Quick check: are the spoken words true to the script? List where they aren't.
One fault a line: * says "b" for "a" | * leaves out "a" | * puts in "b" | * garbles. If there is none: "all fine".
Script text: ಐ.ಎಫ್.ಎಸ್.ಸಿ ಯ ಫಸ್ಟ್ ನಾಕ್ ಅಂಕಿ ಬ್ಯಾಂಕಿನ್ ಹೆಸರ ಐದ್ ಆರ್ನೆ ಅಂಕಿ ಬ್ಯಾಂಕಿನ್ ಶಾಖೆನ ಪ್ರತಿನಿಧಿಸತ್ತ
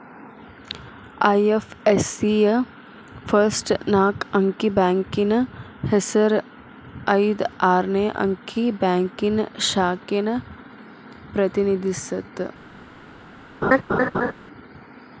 all fine